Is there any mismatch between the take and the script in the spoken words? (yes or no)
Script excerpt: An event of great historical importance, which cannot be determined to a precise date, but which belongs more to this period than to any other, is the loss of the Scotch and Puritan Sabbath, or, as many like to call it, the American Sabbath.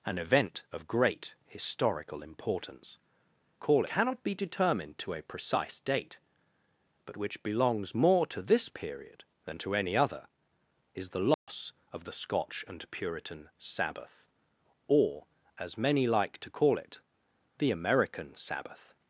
yes